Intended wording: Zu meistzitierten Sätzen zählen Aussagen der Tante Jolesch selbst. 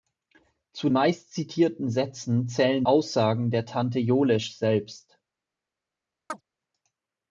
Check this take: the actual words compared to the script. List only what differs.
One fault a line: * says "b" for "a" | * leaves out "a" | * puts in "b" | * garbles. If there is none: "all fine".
all fine